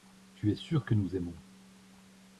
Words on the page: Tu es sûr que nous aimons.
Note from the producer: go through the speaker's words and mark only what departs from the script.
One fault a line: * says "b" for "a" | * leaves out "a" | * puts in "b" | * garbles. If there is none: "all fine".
all fine